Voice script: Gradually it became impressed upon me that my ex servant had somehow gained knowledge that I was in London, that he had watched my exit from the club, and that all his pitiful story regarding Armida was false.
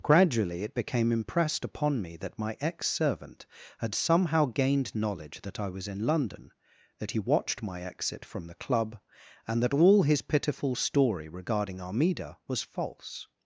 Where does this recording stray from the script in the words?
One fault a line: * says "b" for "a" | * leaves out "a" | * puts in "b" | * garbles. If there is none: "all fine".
* leaves out "had"